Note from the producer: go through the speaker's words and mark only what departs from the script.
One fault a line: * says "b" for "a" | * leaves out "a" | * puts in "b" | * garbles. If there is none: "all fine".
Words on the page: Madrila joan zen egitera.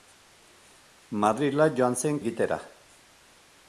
all fine